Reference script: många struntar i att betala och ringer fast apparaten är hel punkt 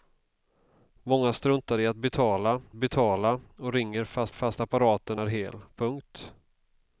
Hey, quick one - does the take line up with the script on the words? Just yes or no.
no